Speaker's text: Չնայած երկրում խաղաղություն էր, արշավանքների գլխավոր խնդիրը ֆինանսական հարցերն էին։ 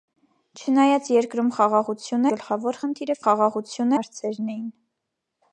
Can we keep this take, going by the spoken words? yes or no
no